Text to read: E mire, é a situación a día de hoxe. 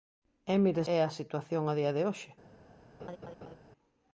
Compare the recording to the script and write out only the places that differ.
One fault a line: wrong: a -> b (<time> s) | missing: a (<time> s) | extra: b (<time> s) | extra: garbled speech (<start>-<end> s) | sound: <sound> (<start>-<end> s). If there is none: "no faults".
sound: laugh (3.0-3.6 s)